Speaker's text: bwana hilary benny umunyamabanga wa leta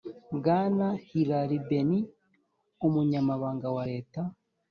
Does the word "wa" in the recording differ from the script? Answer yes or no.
no